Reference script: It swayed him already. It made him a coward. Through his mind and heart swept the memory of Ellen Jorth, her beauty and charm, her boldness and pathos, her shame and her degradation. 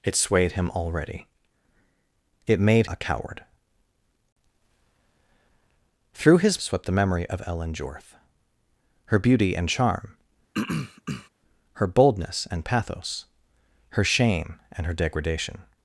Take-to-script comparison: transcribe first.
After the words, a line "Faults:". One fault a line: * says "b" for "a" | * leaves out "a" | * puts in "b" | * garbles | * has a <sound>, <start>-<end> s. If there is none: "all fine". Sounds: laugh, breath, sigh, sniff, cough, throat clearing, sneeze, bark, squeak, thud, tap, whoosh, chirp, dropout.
It swayed him already. It made a coward. Through his swept the memory of Ellen Jorth, her beauty and charm, her boldness and pathos, her shame and her degradation.
Faults:
* leaves out "him"
* leaves out "mind and heart"
* has a throat clearing, 10.5-11.3 s